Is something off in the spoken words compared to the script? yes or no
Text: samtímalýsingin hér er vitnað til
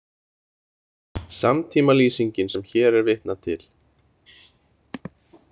yes